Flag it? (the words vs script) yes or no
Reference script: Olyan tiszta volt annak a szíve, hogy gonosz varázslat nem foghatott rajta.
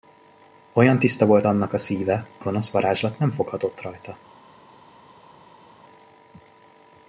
yes